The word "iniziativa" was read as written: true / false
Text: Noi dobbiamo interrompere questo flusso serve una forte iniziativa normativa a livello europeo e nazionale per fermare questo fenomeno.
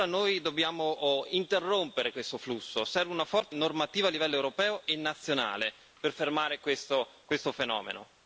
false